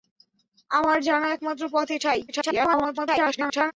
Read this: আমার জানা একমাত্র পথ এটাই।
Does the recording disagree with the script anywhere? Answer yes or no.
yes